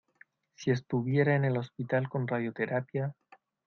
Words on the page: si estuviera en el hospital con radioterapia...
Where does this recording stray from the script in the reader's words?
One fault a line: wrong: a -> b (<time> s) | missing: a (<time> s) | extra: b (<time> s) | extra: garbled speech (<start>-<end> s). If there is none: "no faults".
no faults